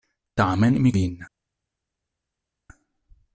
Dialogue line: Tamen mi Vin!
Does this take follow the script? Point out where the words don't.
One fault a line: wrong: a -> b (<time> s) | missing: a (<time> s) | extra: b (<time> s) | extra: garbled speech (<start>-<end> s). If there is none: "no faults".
no faults